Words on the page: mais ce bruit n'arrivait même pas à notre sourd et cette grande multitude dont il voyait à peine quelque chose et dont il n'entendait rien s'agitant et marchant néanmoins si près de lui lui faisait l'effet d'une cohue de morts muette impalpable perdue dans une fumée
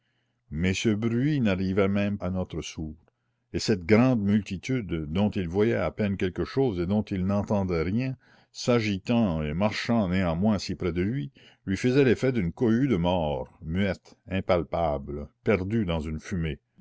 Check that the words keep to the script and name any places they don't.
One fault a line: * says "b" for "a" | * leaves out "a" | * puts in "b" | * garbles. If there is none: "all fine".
* leaves out "pas"